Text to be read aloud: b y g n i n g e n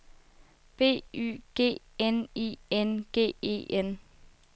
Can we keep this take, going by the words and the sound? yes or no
yes